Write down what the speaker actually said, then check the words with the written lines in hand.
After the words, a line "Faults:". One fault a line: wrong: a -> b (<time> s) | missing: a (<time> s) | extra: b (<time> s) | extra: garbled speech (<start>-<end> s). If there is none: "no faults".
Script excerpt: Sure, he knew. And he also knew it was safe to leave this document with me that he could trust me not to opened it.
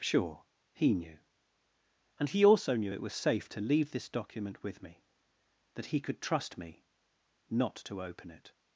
Sure, he knew. And he also knew it was safe to leave this document with me that he could trust me not to open it.
Faults:
wrong: opened -> open (8.0 s)